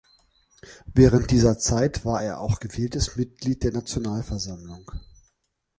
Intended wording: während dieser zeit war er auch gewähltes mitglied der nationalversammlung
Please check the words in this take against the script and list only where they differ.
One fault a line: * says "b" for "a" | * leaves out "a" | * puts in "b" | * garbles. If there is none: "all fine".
all fine